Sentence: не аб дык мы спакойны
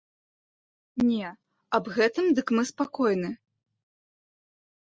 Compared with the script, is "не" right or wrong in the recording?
right